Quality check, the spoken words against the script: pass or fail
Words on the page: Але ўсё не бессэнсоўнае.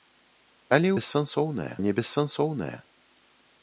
fail